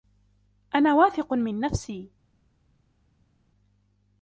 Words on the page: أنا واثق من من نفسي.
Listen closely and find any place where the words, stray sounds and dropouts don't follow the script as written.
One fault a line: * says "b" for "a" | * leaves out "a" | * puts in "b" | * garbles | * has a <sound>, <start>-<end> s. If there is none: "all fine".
* leaves out "من"